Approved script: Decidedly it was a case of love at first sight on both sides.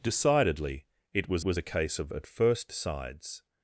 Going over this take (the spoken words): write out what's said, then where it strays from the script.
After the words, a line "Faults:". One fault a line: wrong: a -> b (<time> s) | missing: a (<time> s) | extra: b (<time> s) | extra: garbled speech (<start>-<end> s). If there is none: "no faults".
Decidedly it was was a case of at first sides.
Faults:
extra: was (1.4 s)
missing: love (2.1 s)
missing: sight on both (2.7 s)